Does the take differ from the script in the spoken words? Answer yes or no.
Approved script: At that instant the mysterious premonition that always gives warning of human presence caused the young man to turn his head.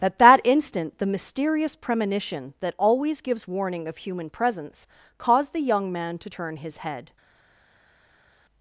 no